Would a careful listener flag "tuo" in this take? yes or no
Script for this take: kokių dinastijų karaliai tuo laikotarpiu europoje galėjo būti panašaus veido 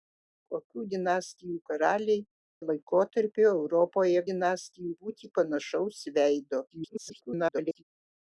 yes